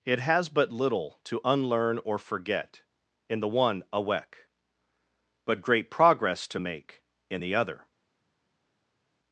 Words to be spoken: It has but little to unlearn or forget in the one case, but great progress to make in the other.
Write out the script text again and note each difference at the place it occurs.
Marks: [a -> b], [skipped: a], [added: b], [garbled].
It has but little to unlearn or forget in the one [case, -> awek] but great progress to make in the other.